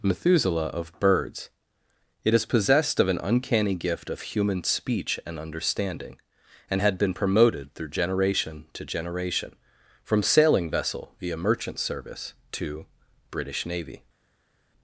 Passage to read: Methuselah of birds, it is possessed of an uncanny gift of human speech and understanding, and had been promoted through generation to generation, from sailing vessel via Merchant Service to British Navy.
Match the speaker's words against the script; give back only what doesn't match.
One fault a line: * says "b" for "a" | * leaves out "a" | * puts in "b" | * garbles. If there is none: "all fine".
all fine